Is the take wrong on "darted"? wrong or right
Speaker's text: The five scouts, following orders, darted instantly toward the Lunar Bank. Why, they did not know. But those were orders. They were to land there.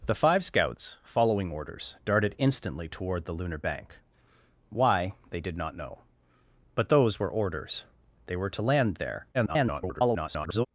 right